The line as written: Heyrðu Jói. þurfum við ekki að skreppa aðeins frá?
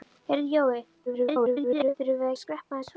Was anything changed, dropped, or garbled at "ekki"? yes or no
yes